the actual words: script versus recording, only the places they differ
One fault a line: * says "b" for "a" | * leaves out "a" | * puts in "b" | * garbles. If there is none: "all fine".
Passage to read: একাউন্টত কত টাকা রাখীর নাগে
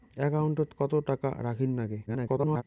* garbles